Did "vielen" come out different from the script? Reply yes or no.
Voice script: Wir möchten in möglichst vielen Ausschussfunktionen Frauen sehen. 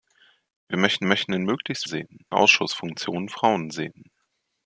yes